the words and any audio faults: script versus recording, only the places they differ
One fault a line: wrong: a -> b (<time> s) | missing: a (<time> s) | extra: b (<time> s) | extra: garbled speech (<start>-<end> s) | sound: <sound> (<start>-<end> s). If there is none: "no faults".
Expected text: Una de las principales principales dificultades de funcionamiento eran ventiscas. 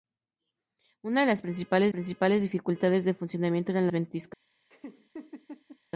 sound: laugh (4.7-5.8 s)